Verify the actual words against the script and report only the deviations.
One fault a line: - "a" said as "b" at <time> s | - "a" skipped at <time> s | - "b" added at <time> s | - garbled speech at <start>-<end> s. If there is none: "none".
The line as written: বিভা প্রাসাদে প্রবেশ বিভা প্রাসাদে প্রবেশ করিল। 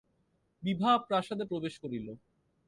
- "বিভা প্রাসাদে প্রবেশ" skipped at 1.7 s